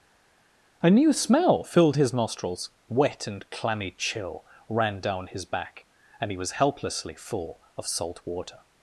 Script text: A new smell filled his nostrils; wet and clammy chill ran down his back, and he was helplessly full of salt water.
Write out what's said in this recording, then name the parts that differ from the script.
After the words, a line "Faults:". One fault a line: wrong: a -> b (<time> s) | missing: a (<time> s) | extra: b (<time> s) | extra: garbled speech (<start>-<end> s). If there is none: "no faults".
A new smell filled his nostrils; wet and clammy chill ran down his back, and he was helplessly full of salt water.
Faults:
no faults